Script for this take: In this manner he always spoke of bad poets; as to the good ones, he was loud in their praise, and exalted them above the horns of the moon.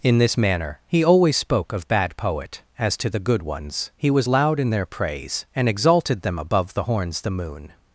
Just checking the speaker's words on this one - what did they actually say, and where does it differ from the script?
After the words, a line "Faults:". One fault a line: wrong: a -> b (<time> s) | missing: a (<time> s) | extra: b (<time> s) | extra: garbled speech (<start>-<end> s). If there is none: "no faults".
In this manner he always spoke of bad poet; as to the good ones, he was loud in their praise, and exalted them above the horns the moon.
Faults:
wrong: poets -> poet (2.2 s)
missing: of (7.2 s)